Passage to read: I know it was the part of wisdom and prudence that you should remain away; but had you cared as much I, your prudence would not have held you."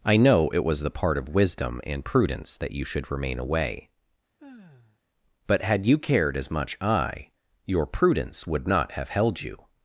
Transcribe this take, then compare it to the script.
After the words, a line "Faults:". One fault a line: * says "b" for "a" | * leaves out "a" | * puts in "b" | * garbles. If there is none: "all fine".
I know it was the part of wisdom and prudence that you should remain away; but had you cared as much I, your prudence would not have held you."
Faults:
all fine